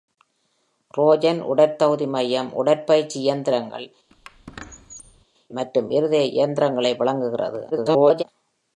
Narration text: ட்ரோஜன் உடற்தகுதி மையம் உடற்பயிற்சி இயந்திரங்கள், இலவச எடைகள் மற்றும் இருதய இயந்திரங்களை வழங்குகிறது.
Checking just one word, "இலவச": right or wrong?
wrong